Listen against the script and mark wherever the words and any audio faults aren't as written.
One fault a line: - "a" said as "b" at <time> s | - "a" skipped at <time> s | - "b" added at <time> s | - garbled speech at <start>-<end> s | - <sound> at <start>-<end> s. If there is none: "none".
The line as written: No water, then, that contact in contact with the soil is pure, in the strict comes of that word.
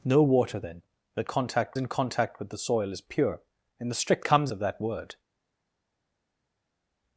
none